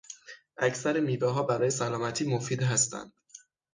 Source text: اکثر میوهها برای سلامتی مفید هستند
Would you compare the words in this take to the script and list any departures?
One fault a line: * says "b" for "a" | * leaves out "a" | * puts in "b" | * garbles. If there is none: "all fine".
all fine